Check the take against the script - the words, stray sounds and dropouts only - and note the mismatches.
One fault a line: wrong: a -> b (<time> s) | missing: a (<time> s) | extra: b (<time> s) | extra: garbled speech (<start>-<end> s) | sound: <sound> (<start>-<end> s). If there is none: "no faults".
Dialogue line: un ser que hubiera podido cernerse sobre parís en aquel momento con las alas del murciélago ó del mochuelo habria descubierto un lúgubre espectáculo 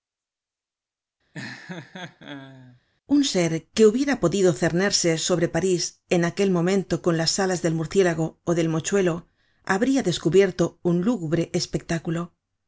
sound: laugh (1.3-2.8 s)